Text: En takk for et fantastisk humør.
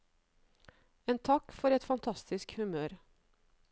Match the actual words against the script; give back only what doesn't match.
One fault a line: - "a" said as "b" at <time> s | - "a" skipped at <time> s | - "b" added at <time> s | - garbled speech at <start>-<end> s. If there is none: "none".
none